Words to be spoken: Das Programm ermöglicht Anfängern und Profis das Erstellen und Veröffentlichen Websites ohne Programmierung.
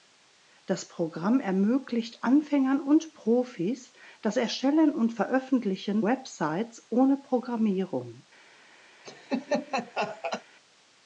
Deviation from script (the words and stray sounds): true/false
true